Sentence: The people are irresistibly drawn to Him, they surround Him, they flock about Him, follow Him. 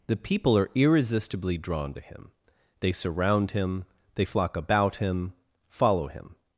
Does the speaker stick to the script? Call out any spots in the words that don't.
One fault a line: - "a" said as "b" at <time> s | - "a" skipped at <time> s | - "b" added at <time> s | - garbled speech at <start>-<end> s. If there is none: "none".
none